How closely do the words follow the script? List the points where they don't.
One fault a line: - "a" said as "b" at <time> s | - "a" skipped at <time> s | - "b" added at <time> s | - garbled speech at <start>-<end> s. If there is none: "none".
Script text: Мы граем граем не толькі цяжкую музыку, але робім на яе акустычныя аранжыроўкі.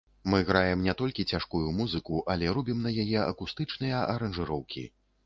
- "граем" skipped at 0.8 s